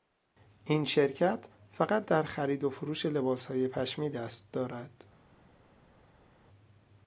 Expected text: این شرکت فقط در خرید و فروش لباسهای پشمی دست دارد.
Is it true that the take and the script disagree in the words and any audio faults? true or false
false